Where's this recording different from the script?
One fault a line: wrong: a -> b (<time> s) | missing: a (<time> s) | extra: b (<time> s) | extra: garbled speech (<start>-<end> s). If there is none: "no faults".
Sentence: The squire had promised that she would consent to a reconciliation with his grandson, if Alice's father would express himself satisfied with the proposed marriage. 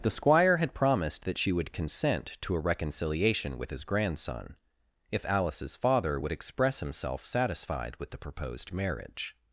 no faults